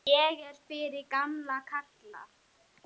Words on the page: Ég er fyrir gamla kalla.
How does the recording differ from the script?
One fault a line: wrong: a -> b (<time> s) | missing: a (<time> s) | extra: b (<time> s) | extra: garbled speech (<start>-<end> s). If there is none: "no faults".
no faults